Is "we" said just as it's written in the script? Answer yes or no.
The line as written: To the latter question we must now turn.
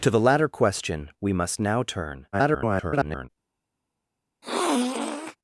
yes